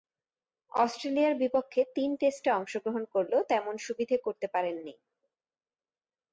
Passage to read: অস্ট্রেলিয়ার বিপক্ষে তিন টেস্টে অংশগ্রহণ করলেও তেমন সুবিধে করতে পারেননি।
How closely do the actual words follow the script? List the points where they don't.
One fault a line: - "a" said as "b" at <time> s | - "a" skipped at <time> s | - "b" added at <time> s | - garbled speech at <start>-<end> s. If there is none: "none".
none